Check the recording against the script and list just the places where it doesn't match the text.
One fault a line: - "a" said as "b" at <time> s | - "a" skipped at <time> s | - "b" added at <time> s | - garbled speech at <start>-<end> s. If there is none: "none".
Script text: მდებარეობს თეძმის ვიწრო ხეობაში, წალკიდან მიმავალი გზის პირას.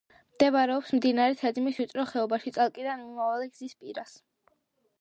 - "მდინარე" added at 1.0 s